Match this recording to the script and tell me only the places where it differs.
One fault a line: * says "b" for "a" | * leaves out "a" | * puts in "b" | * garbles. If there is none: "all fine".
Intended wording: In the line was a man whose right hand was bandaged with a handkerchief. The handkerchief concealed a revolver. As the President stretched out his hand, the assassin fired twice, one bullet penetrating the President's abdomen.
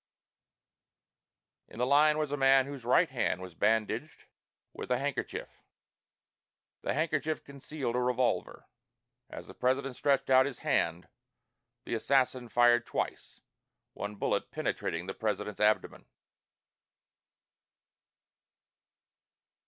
all fine